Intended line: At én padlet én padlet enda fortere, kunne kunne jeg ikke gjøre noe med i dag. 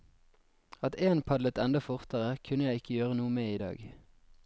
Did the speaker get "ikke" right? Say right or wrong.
right